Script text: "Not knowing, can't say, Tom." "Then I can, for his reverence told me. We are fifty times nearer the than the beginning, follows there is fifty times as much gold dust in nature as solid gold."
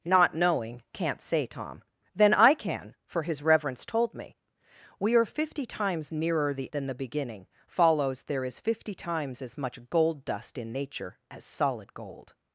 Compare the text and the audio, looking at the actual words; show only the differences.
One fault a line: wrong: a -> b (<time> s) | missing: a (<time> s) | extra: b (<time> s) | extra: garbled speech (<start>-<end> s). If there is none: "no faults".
no faults